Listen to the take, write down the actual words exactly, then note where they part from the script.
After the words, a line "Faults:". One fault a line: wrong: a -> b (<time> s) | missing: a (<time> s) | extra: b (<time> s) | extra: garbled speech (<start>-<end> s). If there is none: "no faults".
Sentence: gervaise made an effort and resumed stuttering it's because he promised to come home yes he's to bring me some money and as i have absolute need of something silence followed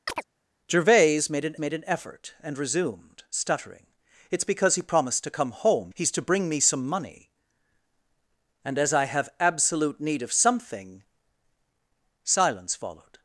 gervaise made an made an effort and resumed stuttering it's because he promised to come home he's to bring me some money and as i have absolute need of something silence followed
Faults:
extra: made an (1.6 s)
missing: yes (5.9 s)